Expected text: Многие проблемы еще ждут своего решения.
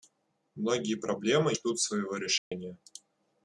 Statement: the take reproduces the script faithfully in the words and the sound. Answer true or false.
false